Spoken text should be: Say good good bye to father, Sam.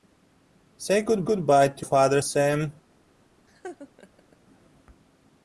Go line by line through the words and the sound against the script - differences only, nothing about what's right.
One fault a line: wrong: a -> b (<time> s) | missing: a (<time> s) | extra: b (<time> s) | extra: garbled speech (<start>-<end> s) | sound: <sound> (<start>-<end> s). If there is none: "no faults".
sound: laugh (3.5-4.4 s)